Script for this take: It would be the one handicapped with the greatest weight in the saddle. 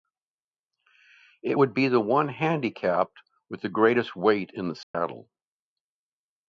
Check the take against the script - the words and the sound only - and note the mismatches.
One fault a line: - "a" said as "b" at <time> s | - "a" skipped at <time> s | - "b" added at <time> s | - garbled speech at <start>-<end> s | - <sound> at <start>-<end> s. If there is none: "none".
- dropout at 4.8-4.9 s